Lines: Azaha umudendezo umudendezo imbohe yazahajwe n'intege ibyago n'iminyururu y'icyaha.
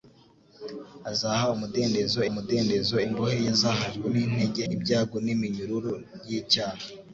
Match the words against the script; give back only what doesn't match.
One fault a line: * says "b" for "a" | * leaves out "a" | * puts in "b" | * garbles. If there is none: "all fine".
all fine